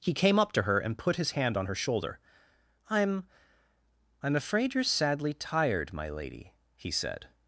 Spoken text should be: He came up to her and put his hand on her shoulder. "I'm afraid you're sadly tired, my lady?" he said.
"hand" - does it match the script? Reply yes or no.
yes